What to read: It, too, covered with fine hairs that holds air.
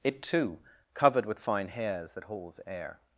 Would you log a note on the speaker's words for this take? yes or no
no